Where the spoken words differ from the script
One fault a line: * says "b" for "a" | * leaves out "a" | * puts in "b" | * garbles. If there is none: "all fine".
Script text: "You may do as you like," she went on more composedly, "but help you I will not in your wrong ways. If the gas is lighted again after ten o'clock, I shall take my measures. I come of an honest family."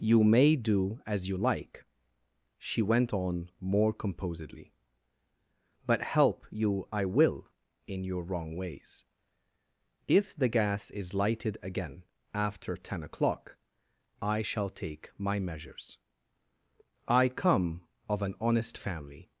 * leaves out "not"